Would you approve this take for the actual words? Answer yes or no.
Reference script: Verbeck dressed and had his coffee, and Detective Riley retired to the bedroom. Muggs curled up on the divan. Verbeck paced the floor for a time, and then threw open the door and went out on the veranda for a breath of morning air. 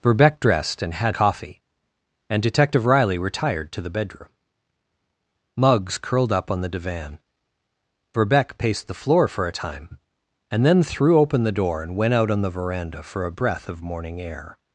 no